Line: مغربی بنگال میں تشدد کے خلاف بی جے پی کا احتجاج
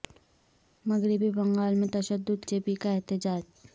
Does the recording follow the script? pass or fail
fail